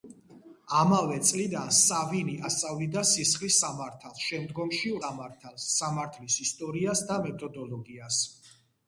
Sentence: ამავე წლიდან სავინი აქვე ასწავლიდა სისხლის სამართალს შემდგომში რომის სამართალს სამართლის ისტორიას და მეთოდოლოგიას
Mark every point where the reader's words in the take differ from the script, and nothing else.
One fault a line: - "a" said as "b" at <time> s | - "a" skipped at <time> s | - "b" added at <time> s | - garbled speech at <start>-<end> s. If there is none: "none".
- "აქვე" skipped at 2.4 s
- "რომის" skipped at 4.9 s